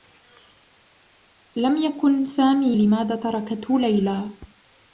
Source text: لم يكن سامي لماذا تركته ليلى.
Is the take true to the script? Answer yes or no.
yes